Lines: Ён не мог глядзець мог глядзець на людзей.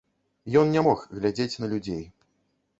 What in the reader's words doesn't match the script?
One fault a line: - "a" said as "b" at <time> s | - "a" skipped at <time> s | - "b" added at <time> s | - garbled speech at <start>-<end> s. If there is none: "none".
- "мог глядзець" skipped at 1.6 s